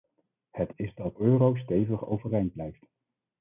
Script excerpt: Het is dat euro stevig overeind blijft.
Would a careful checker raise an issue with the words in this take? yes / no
no